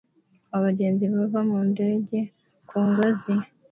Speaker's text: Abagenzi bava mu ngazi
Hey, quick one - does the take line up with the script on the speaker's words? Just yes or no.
no